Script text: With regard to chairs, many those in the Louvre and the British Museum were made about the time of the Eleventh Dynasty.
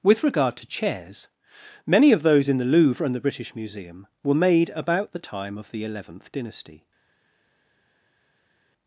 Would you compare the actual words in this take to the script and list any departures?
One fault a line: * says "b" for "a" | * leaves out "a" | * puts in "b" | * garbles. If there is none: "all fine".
* puts in "of"